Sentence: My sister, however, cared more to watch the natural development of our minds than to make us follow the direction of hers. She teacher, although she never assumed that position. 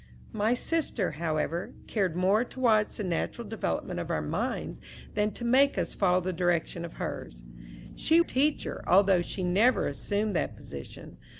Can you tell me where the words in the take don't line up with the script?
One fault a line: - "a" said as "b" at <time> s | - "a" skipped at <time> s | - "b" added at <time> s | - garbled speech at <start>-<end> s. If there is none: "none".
none